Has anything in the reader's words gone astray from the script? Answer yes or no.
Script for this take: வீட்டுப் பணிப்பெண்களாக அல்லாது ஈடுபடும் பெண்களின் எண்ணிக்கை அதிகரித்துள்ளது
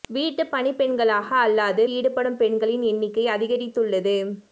no